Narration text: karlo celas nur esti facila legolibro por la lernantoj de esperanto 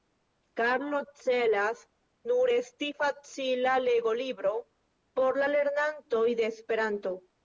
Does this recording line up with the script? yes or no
yes